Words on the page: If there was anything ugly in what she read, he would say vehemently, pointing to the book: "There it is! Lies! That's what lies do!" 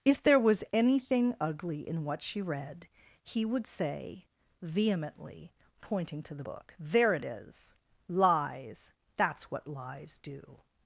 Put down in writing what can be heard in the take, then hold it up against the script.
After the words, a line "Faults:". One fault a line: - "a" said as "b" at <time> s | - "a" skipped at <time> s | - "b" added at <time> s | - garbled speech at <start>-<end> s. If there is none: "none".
If there was anything ugly in what she read, he would say vehemently, pointing to the book: "There it is! Lies! That's what lies do!"
Faults:
none